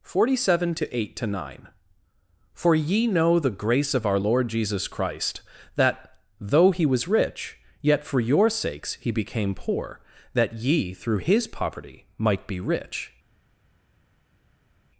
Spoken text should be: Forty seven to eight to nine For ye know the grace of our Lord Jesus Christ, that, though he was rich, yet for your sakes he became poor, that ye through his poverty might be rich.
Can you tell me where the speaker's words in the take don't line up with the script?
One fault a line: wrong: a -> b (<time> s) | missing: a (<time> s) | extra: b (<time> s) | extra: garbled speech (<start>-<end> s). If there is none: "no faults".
no faults